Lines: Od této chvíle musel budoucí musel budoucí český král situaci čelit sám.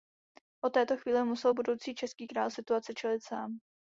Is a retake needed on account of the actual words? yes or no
yes